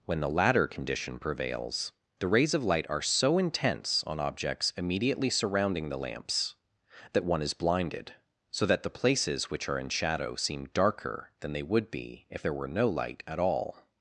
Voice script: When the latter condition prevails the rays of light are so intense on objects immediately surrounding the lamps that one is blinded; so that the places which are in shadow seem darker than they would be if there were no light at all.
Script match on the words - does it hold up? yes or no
yes